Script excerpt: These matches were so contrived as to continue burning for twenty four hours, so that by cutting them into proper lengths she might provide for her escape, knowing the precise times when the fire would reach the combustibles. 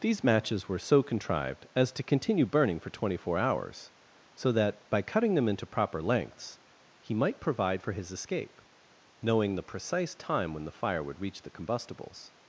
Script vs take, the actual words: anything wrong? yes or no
yes